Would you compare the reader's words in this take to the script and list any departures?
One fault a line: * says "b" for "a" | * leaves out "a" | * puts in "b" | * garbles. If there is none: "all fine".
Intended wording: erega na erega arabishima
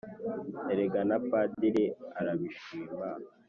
* says "padiri" for "erega"